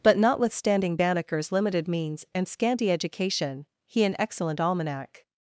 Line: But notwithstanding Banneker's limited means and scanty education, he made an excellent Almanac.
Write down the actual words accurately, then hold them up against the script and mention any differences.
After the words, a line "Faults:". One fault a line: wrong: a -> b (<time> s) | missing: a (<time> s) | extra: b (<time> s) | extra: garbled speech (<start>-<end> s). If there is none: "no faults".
But notwithstanding Banneker's limited means and scanty education, he an excellent Almanac.
Faults:
missing: made (4.0 s)